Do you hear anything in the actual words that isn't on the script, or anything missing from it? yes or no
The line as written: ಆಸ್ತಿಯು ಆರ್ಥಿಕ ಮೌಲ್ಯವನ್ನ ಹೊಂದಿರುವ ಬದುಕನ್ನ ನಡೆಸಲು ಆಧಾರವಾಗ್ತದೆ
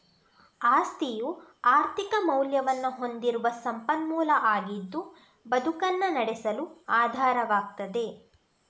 yes